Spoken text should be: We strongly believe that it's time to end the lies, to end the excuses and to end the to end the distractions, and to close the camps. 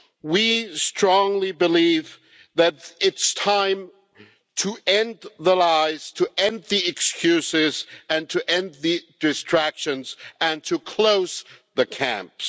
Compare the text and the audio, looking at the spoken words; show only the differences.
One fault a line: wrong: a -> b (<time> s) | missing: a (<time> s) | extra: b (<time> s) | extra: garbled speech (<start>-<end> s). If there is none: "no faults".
missing: to end the (9.0 s)